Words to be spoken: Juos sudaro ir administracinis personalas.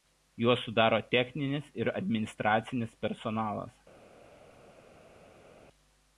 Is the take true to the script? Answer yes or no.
no